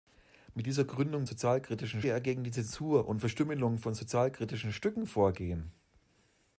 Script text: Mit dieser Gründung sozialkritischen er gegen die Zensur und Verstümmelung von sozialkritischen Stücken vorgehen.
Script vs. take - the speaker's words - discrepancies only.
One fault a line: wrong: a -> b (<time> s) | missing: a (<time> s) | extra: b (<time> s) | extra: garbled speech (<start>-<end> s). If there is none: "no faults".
no faults